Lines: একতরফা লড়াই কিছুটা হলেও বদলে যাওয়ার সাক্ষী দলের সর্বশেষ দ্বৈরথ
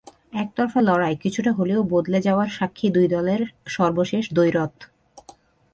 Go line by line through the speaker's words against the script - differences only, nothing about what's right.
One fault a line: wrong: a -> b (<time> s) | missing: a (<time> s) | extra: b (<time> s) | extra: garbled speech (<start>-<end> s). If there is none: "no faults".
extra: দুই (2.9 s)